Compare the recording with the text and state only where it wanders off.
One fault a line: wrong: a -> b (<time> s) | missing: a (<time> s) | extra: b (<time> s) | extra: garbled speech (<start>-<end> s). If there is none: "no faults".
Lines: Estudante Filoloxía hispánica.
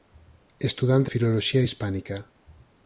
no faults